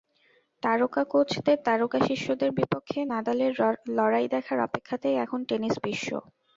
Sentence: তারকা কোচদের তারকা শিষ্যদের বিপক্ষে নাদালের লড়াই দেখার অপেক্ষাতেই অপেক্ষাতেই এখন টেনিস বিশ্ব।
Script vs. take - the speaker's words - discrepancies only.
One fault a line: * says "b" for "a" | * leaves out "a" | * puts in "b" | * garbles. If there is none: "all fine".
* leaves out "অপেক্ষাতেই"